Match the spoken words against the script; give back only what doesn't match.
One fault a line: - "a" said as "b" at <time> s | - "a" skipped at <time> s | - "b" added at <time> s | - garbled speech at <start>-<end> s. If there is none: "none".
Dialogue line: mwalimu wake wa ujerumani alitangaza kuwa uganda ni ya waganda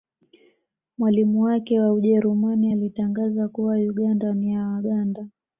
none